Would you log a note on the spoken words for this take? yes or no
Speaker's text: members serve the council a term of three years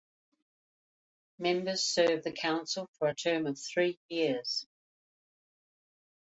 yes